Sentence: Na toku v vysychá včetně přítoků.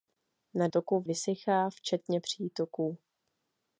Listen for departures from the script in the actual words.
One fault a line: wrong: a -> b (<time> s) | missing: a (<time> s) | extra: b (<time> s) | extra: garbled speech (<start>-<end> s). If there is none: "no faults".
no faults